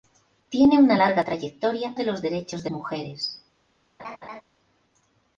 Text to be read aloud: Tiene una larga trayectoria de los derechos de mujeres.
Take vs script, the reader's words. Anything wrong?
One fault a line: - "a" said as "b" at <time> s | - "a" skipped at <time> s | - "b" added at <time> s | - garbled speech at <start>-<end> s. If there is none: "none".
none